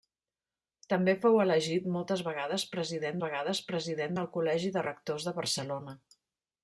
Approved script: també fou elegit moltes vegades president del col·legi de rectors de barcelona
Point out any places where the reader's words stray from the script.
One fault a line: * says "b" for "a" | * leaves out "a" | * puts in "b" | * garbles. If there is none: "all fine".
* puts in "vegades president"